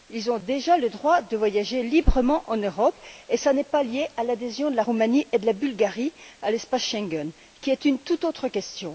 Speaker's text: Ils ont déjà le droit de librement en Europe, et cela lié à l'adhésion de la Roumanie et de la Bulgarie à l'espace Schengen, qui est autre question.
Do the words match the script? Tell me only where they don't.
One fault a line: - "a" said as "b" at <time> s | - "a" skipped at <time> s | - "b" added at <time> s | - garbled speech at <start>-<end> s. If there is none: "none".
- "voyager" added at 1.4 s
- "n'est pas" added at 3.5 s
- "une toute" added at 7.8 s